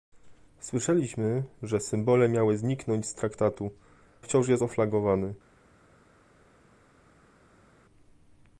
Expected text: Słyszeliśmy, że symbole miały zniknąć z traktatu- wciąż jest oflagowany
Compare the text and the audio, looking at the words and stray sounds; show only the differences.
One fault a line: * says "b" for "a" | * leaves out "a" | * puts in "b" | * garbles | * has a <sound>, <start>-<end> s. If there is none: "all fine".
all fine